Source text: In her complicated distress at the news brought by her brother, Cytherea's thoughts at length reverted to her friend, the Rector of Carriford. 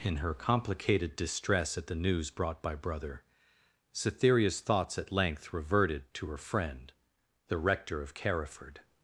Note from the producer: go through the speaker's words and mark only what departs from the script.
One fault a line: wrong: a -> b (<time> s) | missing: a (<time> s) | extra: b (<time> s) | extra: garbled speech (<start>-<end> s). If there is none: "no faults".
missing: her (2.7 s)